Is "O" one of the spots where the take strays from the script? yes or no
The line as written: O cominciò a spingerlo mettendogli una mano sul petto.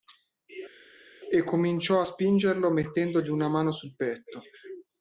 yes